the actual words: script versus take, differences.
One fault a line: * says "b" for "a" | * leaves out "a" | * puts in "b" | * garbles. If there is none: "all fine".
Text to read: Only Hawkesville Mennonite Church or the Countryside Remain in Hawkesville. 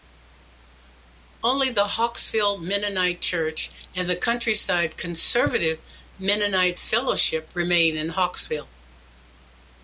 * puts in "the"
* says "and" for "or"
* puts in "Conservative Mennonite Fellowship"